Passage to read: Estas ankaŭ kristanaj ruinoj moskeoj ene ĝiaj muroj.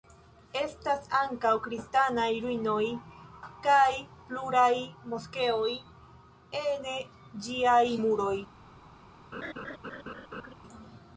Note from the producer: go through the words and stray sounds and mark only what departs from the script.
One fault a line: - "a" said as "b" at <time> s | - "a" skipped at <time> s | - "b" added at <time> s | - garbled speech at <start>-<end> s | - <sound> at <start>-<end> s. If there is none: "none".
- "kaj pluraj" added at 3.7 s
- laugh at 9.3-10.5 s